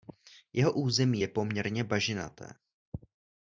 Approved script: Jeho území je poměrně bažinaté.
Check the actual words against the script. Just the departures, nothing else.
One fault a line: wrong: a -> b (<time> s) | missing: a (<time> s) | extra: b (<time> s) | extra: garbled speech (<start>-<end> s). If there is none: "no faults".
no faults